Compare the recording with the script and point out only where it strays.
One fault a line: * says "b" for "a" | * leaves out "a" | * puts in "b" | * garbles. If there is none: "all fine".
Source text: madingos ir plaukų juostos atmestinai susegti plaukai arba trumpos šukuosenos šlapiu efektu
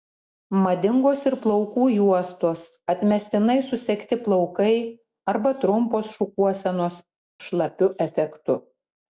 all fine